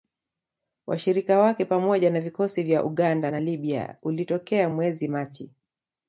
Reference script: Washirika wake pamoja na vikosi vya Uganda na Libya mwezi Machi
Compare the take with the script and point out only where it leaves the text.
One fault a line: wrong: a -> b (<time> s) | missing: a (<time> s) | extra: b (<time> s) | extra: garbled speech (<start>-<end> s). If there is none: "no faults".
extra: ulitokea (4.0 s)